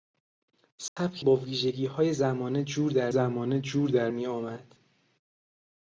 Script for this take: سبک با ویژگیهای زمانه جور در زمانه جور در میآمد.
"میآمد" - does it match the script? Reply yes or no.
yes